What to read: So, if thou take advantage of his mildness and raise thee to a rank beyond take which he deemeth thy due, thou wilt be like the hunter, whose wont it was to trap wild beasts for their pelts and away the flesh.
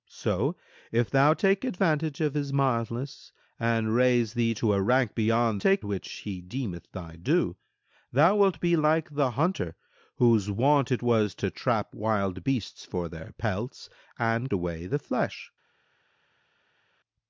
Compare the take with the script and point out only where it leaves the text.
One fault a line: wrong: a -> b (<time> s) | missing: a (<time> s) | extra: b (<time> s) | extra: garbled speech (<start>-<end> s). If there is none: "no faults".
no faults